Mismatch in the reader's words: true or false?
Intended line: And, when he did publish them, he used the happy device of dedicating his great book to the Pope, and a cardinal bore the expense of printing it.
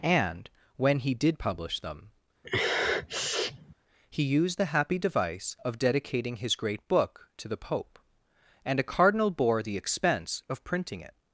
false